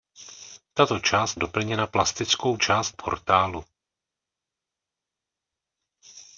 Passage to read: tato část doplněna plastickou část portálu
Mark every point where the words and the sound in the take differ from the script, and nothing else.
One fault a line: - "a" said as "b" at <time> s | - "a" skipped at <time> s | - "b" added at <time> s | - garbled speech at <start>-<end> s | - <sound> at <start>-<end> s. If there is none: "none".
none